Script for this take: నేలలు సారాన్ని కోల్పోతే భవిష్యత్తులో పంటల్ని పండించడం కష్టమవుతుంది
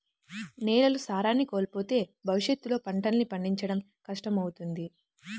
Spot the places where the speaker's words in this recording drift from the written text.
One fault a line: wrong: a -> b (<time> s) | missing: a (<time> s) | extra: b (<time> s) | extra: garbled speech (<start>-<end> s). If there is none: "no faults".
no faults